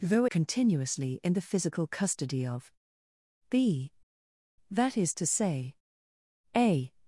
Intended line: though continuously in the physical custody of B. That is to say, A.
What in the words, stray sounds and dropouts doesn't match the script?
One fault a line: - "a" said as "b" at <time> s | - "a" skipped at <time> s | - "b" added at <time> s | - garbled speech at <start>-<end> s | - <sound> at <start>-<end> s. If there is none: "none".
none